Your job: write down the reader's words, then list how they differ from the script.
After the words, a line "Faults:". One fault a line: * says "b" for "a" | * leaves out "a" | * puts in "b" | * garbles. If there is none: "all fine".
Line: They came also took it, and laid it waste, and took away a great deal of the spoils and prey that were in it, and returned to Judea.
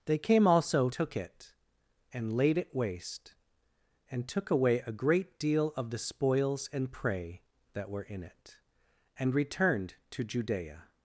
They came also took it, and laid it waste, and took away a great deal of the spoils and prey that were in it, and returned to Judea.
Faults:
all fine